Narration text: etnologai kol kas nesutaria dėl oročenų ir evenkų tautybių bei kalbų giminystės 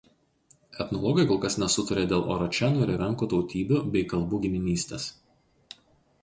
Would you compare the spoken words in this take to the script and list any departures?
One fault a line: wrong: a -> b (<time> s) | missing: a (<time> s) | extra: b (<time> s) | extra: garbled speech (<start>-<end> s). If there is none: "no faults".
no faults